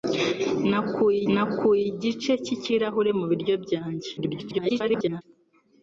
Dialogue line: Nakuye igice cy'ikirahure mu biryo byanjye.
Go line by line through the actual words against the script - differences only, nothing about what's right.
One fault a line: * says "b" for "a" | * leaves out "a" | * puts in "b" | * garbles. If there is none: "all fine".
* puts in "nakuye"
* garbles